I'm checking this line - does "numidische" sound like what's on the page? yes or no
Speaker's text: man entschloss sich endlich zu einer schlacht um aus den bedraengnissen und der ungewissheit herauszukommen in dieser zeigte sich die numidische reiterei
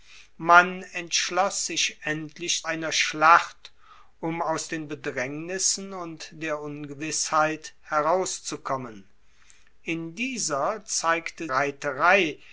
no